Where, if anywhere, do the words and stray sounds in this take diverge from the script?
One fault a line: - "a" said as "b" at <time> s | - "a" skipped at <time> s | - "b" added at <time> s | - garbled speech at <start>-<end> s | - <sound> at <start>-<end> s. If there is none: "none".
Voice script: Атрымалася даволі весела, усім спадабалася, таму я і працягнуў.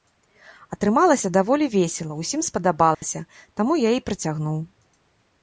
- dropout at 2.9-3.0 s